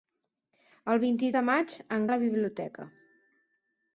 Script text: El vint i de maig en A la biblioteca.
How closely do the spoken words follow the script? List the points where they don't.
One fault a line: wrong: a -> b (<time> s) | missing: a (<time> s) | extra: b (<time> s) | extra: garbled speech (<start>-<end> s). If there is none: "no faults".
no faults